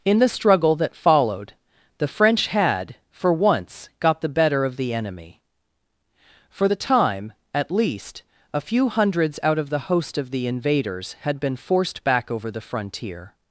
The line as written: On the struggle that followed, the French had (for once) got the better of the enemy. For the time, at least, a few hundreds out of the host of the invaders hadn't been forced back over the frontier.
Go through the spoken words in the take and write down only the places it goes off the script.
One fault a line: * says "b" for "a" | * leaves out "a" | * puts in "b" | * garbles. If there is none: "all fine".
* says "In" for "On"
* says "had" for "hadn't"